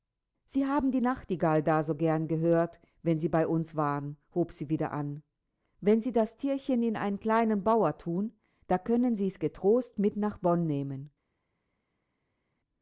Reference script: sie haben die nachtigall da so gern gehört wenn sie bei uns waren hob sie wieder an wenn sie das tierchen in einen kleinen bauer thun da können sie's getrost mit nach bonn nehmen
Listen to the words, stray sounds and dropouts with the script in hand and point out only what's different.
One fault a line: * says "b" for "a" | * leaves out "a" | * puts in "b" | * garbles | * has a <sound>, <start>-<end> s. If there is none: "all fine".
all fine